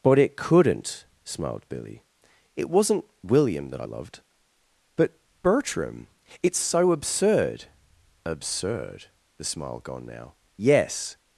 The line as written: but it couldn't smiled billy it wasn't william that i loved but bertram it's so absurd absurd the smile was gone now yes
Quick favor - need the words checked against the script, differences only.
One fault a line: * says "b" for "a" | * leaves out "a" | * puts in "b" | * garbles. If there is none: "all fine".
* leaves out "was"